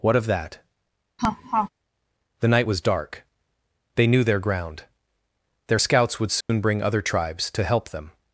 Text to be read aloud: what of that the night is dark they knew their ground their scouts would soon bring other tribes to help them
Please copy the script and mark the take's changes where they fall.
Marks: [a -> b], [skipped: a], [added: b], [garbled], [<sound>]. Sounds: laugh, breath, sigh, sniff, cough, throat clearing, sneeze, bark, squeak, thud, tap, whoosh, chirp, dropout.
what of that [laugh] the night [is -> was] dark they knew their ground their scouts would soon [dropout] bring other tribes to help them